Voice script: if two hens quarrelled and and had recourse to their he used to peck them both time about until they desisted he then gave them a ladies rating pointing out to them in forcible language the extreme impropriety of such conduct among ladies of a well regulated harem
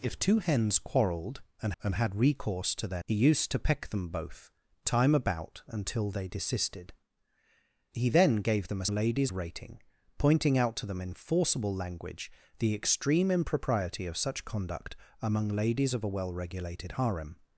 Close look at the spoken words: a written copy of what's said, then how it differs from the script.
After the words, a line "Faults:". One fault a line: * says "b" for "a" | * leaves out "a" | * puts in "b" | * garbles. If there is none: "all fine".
if two hens quarrelled and and had recourse to their he used to peck them both time about until they desisted he then gave them a ladies rating pointing out to them in forcible language the extreme impropriety of such conduct among ladies of a well regulated harem
Faults:
all fine